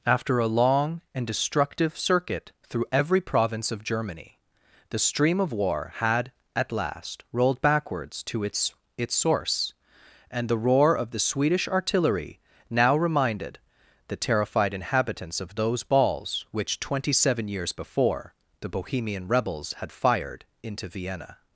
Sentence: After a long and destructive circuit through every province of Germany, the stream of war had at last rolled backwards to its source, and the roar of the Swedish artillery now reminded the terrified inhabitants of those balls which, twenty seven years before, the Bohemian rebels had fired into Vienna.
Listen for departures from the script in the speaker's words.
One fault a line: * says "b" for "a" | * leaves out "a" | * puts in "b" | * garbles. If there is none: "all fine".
* puts in "its"